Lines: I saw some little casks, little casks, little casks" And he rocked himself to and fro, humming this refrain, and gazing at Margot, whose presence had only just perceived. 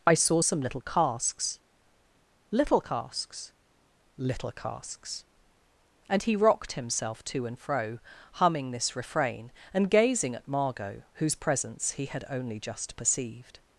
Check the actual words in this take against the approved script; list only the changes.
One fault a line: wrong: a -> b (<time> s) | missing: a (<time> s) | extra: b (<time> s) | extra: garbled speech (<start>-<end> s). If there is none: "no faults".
extra: he (11.9 s)